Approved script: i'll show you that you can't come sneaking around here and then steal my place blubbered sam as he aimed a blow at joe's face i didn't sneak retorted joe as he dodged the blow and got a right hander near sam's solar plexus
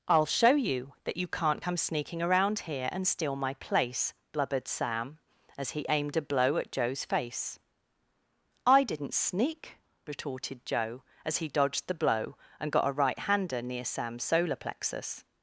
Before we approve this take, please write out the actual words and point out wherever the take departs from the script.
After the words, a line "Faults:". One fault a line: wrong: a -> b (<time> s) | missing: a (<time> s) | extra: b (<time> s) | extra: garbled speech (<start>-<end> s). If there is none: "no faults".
i'll show you that you can't come sneaking around here and steal my place blubbered sam as he aimed a blow at joe's face i didn't sneak retorted joe as he dodged the blow and got a right hander near sam's solar plexus
Faults:
missing: then (3.1 s)